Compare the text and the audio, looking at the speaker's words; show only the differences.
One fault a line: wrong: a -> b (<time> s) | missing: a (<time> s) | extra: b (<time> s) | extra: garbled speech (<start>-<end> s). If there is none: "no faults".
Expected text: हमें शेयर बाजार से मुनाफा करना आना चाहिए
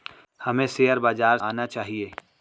missing: से मुनाफा करना (1.4 s)